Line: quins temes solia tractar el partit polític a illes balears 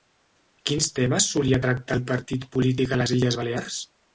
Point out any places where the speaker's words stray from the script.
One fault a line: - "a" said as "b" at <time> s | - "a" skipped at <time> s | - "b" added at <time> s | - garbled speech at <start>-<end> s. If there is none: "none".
- "les" added at 3.0 s